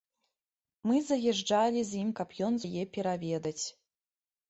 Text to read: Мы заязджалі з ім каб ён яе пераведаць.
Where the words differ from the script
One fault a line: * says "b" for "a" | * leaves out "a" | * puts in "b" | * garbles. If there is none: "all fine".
all fine